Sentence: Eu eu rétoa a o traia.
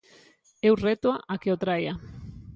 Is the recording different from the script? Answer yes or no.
yes